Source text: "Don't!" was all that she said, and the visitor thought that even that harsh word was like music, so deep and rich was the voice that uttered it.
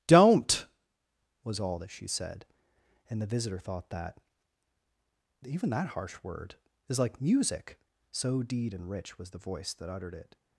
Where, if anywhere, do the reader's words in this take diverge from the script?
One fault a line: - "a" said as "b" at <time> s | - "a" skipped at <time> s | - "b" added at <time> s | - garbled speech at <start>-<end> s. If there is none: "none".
- "was" said as "is" at 6.9 s
- "deep" said as "deed" at 8.4 s